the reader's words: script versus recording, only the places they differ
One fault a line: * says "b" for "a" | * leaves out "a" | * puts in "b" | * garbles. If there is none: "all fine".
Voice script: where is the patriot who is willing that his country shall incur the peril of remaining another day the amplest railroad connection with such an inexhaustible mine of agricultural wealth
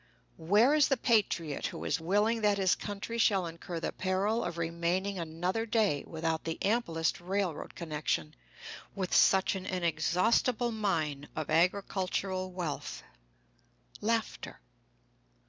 * puts in "without"